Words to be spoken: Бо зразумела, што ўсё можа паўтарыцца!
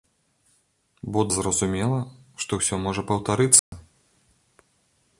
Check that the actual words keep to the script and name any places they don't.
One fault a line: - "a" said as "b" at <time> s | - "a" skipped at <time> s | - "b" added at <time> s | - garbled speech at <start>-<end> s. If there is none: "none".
none